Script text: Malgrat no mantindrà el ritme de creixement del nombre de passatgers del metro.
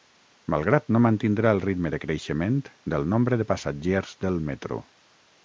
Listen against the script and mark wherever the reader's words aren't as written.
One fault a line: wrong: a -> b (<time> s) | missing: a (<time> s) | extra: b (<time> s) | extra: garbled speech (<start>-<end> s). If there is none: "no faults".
no faults